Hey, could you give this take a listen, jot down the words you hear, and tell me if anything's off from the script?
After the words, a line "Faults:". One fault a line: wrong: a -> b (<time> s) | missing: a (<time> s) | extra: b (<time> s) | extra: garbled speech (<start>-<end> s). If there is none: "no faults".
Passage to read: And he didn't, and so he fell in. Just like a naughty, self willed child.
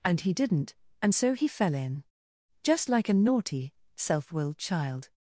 And he didn't, and so he fell in. Just like a naughty, self willed child.
Faults:
no faults